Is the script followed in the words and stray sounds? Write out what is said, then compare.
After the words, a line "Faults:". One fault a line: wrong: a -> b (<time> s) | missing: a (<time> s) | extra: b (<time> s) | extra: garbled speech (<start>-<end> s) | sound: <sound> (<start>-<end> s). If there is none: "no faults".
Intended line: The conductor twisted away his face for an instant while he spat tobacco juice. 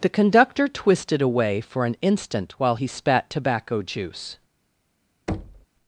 The conductor twisted away for an instant while he spat tobacco juice.
Faults:
missing: his face (1.6 s)
sound: thud (5.3-5.7 s)